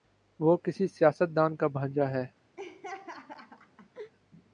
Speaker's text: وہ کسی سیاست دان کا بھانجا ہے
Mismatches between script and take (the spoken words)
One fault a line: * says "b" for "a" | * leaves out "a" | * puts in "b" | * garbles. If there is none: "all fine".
all fine